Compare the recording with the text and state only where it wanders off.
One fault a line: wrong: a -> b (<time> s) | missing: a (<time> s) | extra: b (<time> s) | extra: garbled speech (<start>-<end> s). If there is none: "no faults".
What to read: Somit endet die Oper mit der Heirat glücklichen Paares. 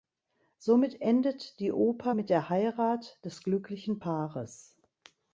extra: des (3.2 s)